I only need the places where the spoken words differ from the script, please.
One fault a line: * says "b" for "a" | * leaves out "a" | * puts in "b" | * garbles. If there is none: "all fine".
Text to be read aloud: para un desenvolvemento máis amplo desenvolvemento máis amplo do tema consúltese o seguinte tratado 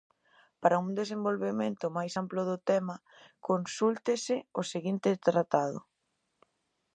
* leaves out "desenvolvemento máis amplo"